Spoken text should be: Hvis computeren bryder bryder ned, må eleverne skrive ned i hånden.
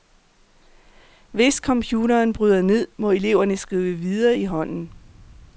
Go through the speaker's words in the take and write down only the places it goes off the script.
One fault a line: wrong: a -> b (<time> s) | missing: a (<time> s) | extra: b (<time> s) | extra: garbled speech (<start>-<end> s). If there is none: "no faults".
missing: bryder (2.6 s)
wrong: ned -> videre (4.0 s)